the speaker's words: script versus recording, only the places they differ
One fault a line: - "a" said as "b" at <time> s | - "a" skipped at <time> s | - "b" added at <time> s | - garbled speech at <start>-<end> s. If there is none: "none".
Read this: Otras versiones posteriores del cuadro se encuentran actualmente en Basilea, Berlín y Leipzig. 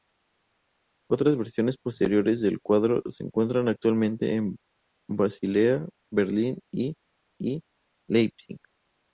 - "y" added at 7.4 s